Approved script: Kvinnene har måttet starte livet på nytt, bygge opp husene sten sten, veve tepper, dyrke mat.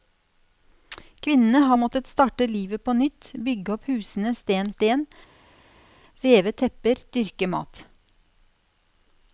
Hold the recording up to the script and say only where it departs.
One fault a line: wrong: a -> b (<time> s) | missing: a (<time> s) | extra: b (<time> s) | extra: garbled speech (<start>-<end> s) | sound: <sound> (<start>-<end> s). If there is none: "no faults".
no faults